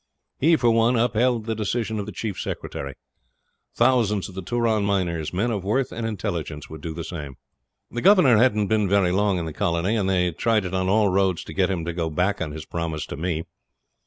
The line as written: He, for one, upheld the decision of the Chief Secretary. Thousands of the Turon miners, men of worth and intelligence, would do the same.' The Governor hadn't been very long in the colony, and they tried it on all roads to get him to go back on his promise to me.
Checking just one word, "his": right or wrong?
right